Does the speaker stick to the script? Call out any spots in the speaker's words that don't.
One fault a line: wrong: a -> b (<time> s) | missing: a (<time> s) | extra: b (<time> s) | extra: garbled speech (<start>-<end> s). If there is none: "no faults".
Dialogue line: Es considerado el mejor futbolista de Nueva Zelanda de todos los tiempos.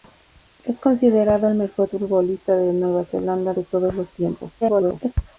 extra: garbled speech (4.6-5.1 s)